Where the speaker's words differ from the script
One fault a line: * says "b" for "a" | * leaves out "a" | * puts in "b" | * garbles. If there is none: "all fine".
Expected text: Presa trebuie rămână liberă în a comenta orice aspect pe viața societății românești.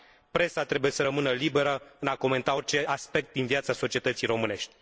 * puts in "să"
* says "din" for "pe"